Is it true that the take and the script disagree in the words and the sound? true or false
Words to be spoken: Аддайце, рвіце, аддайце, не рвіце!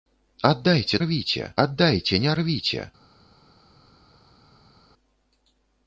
false